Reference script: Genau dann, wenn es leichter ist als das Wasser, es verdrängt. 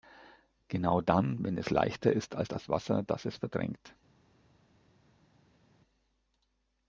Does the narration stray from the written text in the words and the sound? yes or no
yes